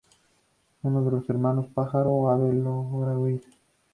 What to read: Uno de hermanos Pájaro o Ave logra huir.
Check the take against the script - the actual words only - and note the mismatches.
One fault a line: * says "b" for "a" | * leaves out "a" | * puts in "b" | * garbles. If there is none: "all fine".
* puts in "los"